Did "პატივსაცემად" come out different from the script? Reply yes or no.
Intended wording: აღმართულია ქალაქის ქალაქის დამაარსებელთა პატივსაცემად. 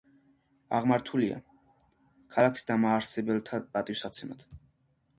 no